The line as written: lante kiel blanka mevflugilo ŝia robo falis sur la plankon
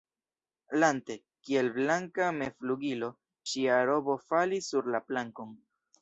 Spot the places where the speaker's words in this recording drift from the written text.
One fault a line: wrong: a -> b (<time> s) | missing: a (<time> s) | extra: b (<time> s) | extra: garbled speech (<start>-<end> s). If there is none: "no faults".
no faults